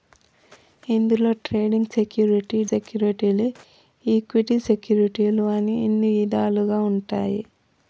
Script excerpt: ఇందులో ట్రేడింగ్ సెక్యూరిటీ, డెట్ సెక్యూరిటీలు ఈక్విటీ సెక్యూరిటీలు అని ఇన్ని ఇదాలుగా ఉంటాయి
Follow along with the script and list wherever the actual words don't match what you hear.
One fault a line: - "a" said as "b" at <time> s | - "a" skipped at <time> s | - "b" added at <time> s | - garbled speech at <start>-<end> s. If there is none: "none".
- "డెట్" skipped at 2.6 s